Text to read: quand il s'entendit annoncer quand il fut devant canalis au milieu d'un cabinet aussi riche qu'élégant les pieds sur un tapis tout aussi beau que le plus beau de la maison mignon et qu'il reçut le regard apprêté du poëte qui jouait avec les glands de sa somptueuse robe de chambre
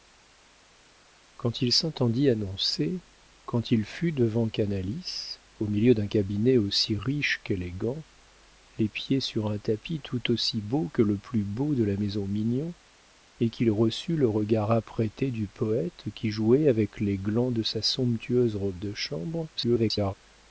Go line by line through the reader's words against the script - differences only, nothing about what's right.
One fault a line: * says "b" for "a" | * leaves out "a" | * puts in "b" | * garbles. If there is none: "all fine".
* garbles